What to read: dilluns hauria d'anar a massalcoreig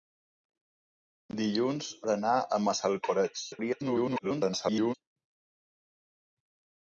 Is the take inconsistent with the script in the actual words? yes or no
yes